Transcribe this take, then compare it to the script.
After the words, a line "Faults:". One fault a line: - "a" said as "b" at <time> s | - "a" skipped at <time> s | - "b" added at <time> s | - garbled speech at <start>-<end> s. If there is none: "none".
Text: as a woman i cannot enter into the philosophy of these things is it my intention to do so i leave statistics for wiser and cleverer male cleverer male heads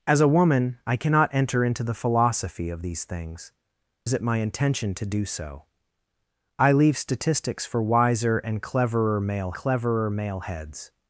as a woman i cannot enter into the philosophy of these things is it my intention to do so i leave statistics for wiser and cleverer male cleverer male heads
Faults:
none